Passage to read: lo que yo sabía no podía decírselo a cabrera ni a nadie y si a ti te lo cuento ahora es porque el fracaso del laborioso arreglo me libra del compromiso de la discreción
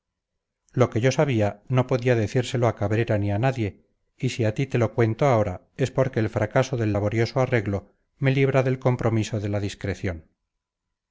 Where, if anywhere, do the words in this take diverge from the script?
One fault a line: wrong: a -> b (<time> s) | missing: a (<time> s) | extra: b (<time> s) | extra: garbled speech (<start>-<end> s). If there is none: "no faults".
no faults